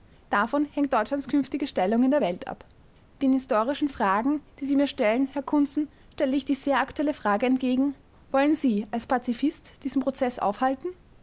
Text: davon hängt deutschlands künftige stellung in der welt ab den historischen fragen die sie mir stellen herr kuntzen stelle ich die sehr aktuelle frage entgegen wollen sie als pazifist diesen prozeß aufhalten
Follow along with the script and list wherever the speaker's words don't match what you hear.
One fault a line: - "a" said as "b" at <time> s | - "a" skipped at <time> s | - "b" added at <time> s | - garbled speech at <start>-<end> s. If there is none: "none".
none